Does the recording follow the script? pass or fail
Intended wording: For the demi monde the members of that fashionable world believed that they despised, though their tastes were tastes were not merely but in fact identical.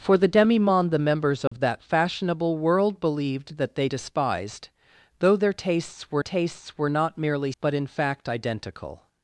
pass